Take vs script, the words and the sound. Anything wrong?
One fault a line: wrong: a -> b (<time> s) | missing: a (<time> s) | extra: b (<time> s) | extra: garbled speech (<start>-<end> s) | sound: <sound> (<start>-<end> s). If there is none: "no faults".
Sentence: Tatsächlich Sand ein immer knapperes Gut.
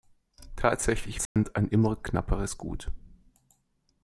sound: dropout (1.3-1.4 s)